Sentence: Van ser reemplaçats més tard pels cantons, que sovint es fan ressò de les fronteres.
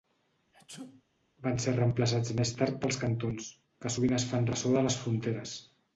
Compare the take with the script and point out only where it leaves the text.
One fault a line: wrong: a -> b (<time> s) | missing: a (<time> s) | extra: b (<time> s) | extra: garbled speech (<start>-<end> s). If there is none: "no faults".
no faults